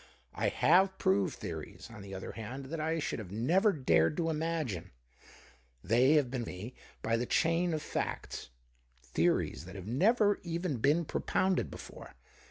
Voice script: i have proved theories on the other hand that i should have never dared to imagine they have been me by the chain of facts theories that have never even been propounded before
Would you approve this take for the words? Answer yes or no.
yes